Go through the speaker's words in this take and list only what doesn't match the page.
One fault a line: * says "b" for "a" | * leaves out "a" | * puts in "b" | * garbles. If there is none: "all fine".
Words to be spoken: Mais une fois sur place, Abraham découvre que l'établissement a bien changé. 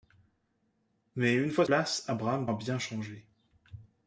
* leaves out "sur"
* leaves out "découvre que l'établissement"